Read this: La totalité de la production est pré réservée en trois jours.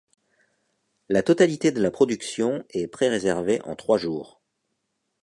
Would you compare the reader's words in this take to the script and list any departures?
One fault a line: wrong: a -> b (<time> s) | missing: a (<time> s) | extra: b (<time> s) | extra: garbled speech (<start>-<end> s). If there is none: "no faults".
no faults